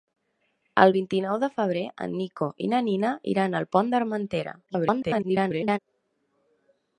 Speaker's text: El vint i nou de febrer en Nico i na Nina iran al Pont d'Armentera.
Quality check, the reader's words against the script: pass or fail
fail